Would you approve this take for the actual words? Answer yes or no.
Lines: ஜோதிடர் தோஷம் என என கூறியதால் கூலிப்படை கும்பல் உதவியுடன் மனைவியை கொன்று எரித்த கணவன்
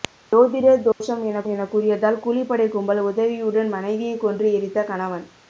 yes